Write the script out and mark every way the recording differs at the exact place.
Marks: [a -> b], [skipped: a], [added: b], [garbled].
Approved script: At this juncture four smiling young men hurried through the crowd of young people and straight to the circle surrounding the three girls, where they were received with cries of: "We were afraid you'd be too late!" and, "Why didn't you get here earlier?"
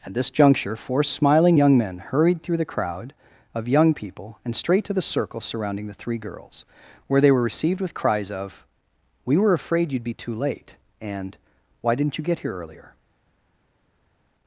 At this juncture four smiling young men hurried through the crowd of young people and straight to the circle surrounding the three girls, where they were received with cries of: "We were afraid you'd be too late!" and, "Why didn't you get here earlier?"